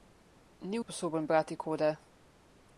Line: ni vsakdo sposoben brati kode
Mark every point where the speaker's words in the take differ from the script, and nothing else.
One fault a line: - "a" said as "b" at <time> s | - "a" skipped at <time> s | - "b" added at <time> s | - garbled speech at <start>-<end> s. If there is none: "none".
- "vsakdo" skipped at 0.8 s